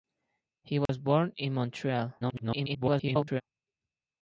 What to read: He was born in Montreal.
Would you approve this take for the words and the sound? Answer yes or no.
no